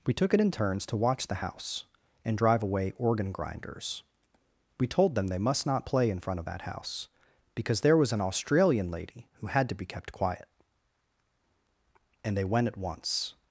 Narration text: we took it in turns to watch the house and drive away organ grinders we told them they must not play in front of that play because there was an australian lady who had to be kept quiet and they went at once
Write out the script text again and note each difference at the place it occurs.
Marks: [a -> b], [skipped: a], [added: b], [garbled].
we took it in turns to watch the house and drive away organ grinders we told them they must not play in front of that [play -> house] because there was an australian lady who had to be kept quiet and they went at once